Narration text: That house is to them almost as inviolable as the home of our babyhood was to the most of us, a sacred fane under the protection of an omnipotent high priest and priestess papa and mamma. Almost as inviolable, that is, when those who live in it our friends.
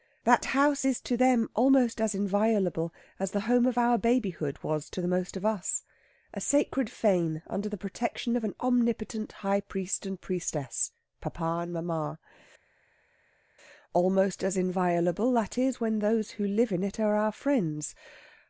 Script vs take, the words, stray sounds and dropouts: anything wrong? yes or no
yes